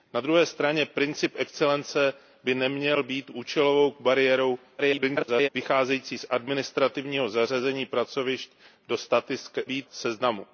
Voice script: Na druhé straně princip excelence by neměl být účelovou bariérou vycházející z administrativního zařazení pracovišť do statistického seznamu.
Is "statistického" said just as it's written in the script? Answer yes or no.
no